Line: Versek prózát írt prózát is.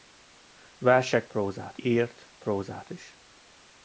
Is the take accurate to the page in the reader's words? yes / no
yes